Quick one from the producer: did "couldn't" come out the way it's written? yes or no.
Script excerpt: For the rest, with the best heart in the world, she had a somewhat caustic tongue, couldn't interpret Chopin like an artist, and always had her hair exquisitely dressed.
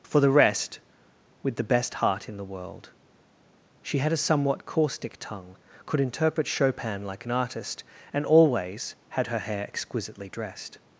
no